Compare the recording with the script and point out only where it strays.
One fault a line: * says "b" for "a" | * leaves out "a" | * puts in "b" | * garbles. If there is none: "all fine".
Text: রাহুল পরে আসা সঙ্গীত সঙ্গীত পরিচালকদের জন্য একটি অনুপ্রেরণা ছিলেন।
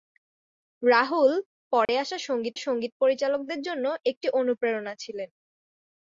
all fine